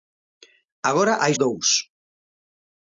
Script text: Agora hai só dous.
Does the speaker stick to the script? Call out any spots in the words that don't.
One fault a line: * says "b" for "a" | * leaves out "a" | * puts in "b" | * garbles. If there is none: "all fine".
* leaves out "só"